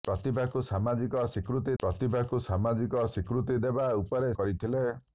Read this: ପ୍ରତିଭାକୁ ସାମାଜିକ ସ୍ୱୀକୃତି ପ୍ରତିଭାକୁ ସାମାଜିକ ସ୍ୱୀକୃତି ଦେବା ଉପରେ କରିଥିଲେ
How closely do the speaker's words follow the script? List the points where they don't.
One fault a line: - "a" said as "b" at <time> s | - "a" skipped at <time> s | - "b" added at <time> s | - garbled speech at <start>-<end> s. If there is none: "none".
none